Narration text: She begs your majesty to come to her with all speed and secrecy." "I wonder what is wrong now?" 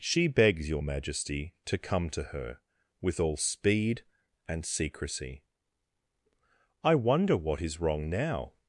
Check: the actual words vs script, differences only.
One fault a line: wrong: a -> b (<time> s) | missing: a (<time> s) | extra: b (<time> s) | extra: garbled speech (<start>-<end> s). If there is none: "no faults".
no faults